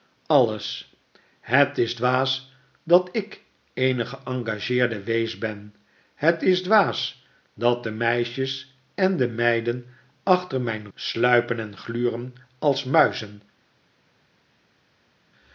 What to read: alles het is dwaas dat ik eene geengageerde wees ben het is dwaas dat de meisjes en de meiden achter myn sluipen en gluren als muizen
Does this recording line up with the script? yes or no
yes